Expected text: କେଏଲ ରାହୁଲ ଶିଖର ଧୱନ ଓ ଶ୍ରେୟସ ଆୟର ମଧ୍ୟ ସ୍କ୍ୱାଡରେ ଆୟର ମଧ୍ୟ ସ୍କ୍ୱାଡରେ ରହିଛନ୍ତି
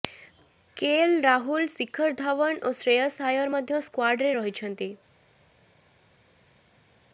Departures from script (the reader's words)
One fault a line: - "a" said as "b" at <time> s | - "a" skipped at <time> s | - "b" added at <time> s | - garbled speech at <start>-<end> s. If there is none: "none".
- "ଆୟର ମଧ୍ୟ ସ୍କ୍ୱାଡରେ" skipped at 4.3 s